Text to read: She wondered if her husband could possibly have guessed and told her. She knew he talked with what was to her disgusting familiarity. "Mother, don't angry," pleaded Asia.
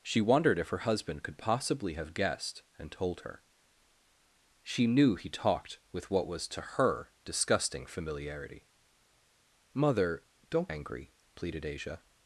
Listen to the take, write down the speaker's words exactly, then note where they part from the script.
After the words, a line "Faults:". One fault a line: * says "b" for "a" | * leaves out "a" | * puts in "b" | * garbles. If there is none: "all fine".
She wondered if her husband could possibly have guessed and told her. She knew he talked with what was to her disgusting familiarity. "Mother, don't angry," pleaded Asia.
Faults:
all fine